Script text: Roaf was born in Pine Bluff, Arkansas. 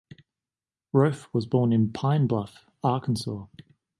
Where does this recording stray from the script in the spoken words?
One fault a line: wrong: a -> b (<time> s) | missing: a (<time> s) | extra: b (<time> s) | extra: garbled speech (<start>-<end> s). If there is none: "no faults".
no faults